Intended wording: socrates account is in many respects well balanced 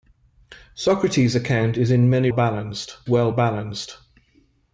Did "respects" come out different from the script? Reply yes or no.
yes